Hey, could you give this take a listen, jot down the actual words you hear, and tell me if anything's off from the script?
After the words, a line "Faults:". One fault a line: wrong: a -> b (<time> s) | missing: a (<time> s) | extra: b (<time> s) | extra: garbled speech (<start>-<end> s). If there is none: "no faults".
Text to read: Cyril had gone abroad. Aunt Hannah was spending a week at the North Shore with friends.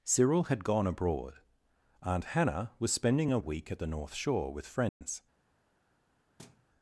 Cyril had gone abroad. Aunt Hannah was spending a week at the North Shore with friends.
Faults:
no faults